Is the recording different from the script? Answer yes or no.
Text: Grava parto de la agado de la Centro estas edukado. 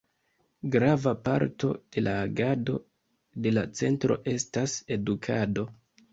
no